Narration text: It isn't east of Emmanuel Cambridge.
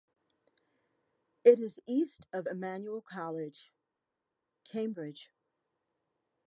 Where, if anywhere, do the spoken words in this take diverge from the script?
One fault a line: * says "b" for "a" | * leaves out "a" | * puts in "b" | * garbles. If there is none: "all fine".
* says "is" for "isn't"
* puts in "College"